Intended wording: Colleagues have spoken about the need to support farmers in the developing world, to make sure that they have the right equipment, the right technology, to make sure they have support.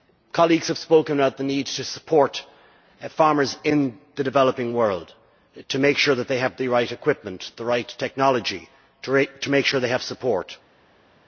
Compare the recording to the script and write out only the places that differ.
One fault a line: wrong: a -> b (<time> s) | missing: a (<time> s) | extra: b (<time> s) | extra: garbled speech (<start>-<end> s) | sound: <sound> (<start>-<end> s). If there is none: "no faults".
no faults